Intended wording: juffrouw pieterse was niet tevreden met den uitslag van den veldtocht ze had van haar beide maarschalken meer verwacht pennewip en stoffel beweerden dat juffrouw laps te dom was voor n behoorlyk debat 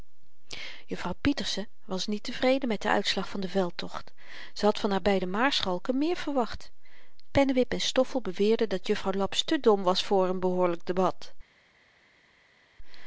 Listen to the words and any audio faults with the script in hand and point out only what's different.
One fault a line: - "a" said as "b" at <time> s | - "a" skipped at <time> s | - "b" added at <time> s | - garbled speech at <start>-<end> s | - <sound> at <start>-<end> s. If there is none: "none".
none